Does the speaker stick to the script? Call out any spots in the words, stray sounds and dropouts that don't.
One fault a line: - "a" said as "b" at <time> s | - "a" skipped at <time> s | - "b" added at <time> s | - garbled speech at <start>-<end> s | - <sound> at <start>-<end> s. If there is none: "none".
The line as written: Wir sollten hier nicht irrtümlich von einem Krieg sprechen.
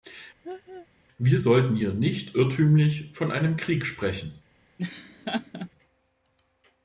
- laugh at 0.4-0.9 s
- laugh at 4.8-5.7 s